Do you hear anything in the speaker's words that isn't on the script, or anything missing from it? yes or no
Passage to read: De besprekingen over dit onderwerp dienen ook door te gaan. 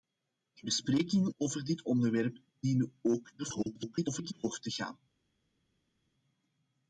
yes